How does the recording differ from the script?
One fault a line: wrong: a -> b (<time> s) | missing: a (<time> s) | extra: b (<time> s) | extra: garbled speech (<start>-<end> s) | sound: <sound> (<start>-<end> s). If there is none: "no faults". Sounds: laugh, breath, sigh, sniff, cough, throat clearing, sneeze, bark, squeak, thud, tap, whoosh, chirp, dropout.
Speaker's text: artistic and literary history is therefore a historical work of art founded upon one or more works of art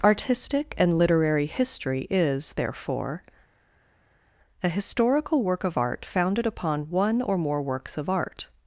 no faults